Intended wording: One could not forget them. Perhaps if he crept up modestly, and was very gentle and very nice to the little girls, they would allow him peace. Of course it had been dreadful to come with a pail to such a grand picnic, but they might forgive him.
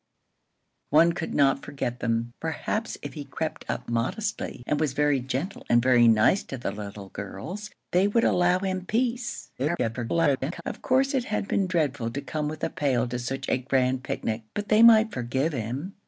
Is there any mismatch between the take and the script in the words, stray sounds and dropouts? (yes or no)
yes